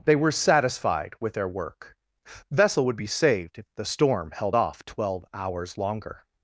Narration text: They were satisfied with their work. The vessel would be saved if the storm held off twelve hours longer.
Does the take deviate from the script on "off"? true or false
false